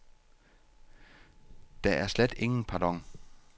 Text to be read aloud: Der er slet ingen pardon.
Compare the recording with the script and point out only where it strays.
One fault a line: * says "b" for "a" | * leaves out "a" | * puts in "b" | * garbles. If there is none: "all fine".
all fine